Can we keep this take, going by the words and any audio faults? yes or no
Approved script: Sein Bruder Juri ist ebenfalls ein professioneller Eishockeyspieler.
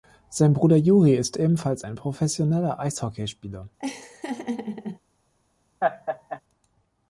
no